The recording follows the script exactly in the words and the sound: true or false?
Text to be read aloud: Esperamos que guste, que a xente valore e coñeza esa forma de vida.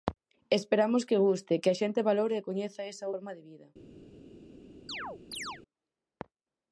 false